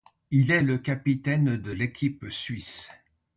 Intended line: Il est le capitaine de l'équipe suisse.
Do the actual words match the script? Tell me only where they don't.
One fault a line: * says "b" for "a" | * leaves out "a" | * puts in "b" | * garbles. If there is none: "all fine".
all fine